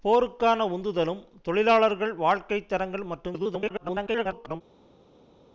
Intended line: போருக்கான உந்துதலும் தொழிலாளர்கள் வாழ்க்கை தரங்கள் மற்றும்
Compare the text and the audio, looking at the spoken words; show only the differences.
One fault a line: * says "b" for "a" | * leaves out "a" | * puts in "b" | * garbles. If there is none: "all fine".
* garbles